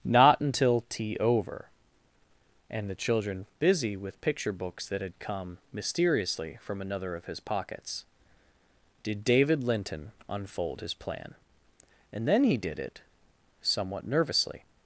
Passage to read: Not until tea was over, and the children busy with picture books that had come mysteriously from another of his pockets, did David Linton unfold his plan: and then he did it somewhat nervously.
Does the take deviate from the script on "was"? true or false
true